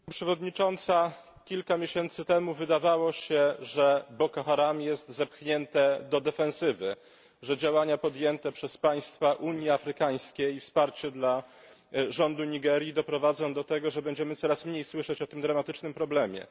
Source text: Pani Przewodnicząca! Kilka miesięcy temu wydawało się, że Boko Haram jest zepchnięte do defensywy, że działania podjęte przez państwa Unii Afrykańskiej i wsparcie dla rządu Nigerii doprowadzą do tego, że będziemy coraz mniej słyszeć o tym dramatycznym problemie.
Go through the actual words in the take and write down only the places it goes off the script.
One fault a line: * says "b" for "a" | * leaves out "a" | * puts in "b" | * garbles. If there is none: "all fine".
all fine